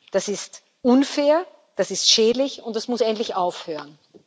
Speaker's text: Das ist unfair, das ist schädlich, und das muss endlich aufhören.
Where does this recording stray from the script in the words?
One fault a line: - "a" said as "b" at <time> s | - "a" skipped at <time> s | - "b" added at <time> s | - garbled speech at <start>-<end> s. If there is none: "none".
none